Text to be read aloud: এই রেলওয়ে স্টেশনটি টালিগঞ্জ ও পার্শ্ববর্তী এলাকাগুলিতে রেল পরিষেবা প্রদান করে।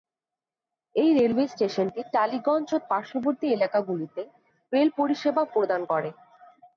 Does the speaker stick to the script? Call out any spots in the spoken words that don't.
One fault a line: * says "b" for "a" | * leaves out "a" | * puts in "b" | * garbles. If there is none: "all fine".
all fine